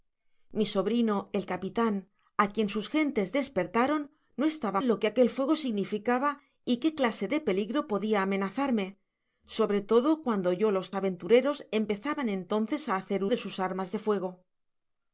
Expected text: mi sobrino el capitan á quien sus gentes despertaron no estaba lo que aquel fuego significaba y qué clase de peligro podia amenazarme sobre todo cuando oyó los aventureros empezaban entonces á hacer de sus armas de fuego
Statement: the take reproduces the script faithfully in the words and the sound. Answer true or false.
true